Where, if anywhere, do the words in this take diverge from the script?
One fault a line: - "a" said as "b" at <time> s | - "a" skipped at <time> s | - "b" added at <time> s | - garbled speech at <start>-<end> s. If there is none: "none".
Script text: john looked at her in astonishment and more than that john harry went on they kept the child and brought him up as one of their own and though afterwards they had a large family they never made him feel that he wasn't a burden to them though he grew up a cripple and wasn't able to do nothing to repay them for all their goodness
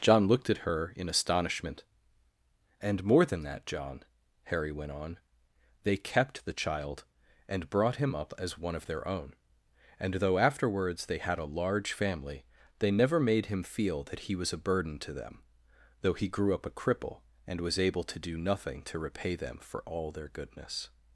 - "wasn't" said as "was" at 14.3 s
- "wasn't" said as "was" at 17.6 s